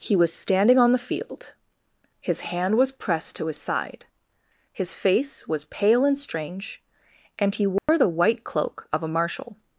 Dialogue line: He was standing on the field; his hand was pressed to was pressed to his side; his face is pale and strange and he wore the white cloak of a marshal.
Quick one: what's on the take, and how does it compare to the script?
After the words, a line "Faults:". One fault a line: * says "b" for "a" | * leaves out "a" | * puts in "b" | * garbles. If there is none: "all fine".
He was standing on the field; his hand was pressed to his side; his face was pale and strange and he wore the white cloak of a marshal.
Faults:
* leaves out "was pressed to"
* says "was" for "is"